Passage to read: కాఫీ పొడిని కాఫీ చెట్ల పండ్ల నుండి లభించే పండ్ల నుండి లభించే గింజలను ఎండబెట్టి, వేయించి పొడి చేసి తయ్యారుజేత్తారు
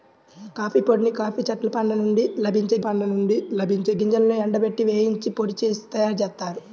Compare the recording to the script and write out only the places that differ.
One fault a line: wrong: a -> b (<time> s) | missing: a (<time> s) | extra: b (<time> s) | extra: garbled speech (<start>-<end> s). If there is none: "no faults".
no faults